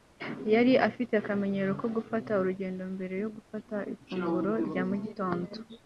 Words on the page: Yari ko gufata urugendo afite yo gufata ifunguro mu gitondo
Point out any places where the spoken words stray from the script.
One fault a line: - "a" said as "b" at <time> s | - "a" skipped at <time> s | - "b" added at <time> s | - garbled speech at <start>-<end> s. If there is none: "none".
- "afite akamenyero" added at 0.9 s
- "afite" said as "mbere" at 3.0 s
- "rya" added at 4.7 s